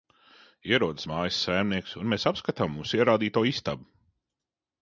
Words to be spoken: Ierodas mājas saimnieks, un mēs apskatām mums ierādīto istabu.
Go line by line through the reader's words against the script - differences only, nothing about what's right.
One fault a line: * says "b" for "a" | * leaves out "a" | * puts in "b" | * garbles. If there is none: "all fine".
all fine